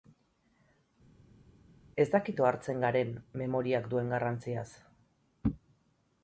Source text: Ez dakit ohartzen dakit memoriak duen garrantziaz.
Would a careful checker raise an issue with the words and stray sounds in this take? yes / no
yes